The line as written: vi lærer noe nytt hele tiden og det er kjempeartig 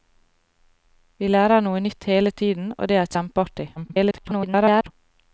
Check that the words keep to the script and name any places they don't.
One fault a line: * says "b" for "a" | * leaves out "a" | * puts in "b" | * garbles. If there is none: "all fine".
* garbles